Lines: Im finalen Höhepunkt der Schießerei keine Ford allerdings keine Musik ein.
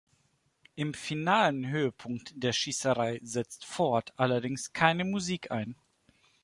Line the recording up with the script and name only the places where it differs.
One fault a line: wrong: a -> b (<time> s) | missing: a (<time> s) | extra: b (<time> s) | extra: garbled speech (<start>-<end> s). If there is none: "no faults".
wrong: keine -> setzt (3.2 s)